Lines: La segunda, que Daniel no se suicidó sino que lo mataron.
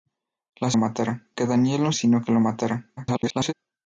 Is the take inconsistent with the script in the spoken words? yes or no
yes